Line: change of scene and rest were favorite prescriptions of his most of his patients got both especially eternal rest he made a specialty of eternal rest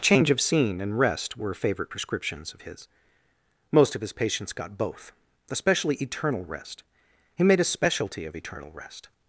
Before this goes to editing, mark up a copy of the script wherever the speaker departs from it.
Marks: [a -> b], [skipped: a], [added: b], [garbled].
change of scene and rest were favorite prescriptions of his most of his patients got both especially eternal rest he made a specialty of eternal rest